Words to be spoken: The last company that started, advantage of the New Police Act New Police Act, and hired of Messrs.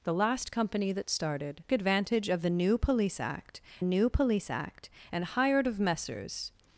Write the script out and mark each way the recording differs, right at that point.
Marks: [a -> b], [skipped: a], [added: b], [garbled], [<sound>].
The last company that started, advantage of the New Police Act New Police Act, and hired of Messrs.